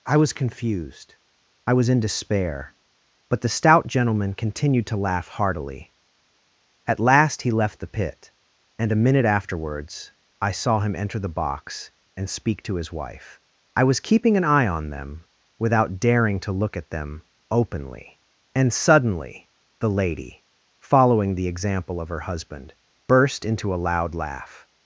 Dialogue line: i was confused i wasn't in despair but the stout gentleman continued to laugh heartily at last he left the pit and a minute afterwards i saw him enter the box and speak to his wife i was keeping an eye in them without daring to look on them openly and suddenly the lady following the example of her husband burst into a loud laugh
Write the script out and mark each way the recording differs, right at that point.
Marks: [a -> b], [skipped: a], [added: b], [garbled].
i was confused i [wasn't -> was] in despair but the stout gentleman continued to laugh heartily at last he left the pit and a minute afterwards i saw him enter the box and speak to his wife i was keeping an eye [in -> on] them without daring to look [on -> at] them openly and suddenly the lady following the example of her husband burst into a loud laugh